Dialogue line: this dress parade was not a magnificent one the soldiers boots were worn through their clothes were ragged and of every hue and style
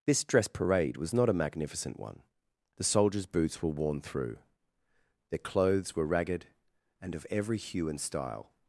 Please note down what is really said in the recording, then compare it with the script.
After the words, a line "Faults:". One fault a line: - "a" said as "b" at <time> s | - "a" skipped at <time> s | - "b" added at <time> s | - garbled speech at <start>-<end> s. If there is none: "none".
this dress parade was not a magnificent one the soldiers boots were worn through their clothes were ragged and of every hue and style
Faults:
none